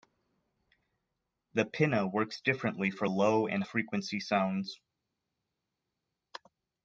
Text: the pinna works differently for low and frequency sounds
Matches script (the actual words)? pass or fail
pass